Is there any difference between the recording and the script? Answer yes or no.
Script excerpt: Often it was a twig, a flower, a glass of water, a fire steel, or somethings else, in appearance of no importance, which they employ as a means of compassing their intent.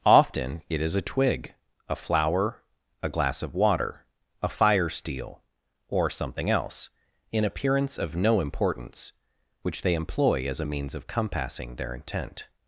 yes